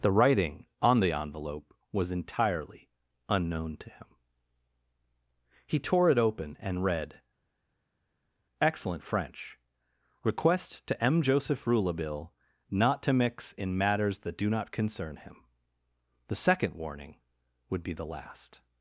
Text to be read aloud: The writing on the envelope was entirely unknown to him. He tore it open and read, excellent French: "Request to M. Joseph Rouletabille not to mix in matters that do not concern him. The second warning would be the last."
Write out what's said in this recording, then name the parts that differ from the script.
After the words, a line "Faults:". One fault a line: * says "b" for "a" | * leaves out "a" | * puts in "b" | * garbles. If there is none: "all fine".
The writing on the envelope was entirely unknown to him. He tore it open and read, excellent French: "Request to M. Joseph Rouletabille not to mix in matters that do not concern him. The second warning would be the last."
Faults:
all fine